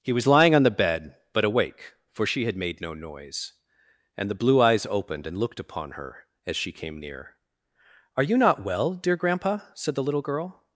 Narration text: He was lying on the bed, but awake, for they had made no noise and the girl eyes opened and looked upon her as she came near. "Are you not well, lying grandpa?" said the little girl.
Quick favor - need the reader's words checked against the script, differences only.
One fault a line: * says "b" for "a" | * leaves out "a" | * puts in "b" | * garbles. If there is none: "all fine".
* says "she" for "they"
* says "blue" for "girl"
* says "dear" for "lying"